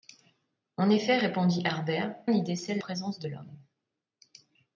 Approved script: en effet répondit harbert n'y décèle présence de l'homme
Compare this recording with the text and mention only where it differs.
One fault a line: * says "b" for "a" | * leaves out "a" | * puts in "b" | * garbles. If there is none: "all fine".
all fine